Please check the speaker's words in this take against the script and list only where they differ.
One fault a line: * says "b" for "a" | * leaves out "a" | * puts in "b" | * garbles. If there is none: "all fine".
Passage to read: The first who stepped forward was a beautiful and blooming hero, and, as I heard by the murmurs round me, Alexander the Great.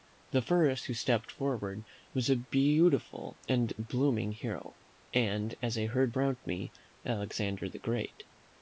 * leaves out "by the murmurs"